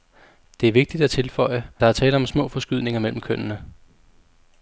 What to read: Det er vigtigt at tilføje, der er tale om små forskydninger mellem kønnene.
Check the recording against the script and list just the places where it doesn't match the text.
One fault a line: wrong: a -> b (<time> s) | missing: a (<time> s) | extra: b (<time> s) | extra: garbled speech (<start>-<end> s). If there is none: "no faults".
no faults